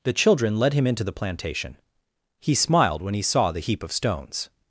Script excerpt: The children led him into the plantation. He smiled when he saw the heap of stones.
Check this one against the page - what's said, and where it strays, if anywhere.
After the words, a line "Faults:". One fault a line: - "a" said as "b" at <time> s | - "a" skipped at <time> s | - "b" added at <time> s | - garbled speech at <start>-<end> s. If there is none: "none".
The children led him into the plantation. He smiled when he saw the heap of stones.
Faults:
none